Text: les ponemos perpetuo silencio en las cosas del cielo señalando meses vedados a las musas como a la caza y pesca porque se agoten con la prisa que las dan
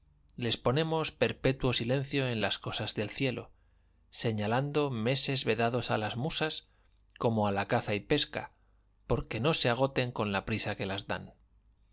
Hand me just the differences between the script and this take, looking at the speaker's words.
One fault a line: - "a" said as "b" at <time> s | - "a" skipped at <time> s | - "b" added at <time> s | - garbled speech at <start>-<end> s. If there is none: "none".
- "no" added at 9.4 s